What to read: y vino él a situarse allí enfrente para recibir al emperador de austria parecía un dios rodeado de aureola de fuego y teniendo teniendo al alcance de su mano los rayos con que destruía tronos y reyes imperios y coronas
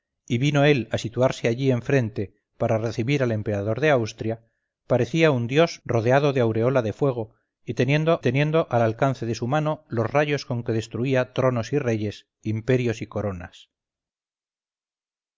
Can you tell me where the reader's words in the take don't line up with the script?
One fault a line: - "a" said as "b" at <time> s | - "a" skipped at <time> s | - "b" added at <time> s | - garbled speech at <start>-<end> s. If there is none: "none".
none